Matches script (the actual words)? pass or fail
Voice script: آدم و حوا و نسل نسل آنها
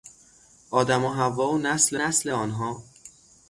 pass